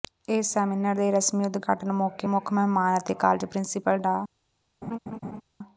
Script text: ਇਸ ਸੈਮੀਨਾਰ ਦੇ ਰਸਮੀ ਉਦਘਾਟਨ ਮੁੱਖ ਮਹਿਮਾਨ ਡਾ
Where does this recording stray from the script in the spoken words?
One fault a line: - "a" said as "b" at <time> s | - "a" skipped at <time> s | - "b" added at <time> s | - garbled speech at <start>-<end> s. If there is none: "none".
- "ਮੌਕੇ" added at 1.9 s
- "ਅਤੇ ਕਾਲਜ ਪ੍ਰਿੰਸੀਪਲ" added at 3.0 s